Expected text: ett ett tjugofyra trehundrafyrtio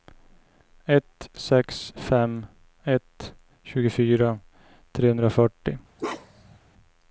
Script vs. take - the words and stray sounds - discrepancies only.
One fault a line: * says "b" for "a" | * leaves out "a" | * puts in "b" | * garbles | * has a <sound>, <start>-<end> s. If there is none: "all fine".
* puts in "sex fem"
* has a bark, 6.0-6.6 s